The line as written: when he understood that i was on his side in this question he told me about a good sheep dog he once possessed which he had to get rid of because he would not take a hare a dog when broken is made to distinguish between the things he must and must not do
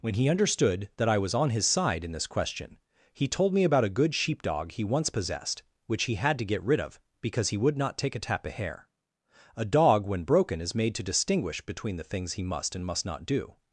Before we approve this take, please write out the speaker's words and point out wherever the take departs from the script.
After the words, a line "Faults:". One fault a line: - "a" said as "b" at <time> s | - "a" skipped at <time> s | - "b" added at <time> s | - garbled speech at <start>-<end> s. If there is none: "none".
when he understood that i was on his side in this question he told me about a good sheep dog he once possessed which he had to get rid of because he would not take a tap of hair a dog when broken is made to distinguish between the things he must and must not do
Faults:
- "hare" said as "tap of hair" at 8.2 s